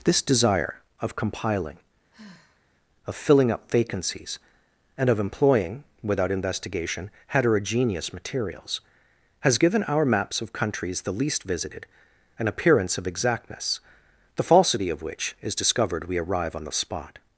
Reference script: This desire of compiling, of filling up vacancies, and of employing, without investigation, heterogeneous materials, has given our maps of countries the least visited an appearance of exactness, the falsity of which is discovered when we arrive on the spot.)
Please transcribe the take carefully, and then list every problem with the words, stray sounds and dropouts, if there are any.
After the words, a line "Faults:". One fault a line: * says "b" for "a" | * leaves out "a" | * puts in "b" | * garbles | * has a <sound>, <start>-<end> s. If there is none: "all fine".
This desire of compiling, of filling up vacancies, and of employing, without investigation, heterogeneous materials, has given our maps of countries the least visited an appearance of exactness, the falsity of which is discovered we arrive on the spot.)
Faults:
* has a sigh, 2.1-2.7 s
* leaves out "when"